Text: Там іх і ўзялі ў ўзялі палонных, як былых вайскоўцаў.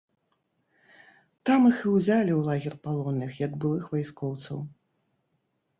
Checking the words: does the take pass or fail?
fail